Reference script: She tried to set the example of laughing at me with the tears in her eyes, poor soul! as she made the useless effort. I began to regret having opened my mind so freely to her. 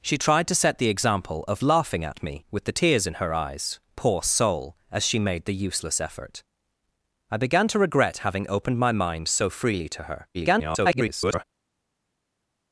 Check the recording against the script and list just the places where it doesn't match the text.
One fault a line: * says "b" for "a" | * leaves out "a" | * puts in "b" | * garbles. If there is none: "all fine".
* garbles